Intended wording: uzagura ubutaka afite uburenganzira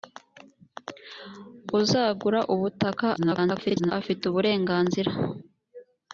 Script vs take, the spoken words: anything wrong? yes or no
yes